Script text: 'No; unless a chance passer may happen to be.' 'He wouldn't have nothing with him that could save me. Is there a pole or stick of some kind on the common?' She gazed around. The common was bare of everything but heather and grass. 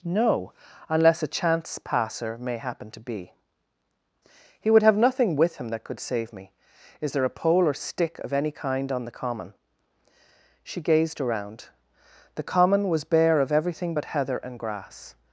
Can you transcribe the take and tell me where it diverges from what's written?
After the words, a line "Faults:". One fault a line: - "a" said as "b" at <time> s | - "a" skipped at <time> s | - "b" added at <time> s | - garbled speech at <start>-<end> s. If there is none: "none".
'No; unless a chance passer may happen to be.' 'He would have nothing with him that could save me. Is there a pole or stick of any kind on the common?' She gazed around. The common was bare of everything but heather and grass.
Faults:
- "wouldn't" said as "would" at 4.7 s
- "some" said as "any" at 8.3 s